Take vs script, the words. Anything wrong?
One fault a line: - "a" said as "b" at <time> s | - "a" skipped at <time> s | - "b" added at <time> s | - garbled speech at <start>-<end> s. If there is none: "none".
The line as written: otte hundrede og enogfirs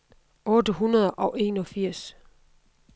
none